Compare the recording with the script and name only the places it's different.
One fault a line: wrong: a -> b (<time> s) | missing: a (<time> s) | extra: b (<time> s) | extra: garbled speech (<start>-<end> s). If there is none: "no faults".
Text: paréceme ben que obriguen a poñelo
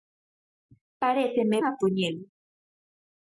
missing: ben que obriguen (1.6 s)